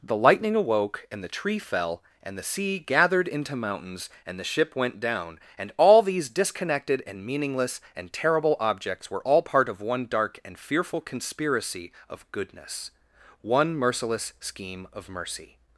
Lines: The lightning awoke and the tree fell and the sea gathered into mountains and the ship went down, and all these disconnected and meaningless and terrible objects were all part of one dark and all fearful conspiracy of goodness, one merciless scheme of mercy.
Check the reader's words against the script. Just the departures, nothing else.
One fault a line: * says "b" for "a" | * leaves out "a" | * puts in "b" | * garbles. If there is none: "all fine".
* leaves out "all"